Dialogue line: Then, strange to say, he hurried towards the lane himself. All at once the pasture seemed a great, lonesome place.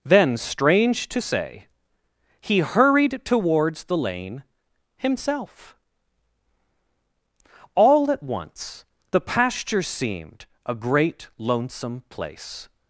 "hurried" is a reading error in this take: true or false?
false